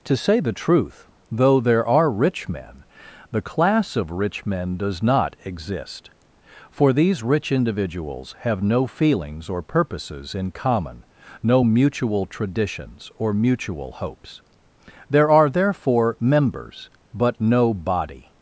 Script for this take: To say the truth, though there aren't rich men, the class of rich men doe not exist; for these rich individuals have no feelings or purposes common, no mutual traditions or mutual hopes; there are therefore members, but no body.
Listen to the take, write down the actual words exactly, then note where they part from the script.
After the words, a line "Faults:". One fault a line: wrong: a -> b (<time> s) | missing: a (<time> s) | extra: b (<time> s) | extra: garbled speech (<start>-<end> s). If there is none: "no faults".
To say the truth, though there are rich men, the class of rich men does not exist; for these rich individuals have no feelings or purposes in common, no mutual traditions or mutual hopes; there are therefore members, but no body.
Faults:
wrong: aren't -> are (1.9 s)
wrong: doe -> does (4.8 s)
extra: in (10.3 s)